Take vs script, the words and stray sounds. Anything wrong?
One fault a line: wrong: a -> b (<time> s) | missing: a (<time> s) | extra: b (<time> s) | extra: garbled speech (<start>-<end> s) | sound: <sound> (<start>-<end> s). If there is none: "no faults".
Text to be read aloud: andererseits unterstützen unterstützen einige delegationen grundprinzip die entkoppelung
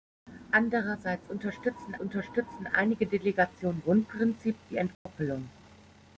sound: dropout (4.9-5.1 s)